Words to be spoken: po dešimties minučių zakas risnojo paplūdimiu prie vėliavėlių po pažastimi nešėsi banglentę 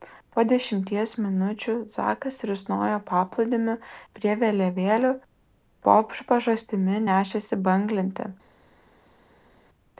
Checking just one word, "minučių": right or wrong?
right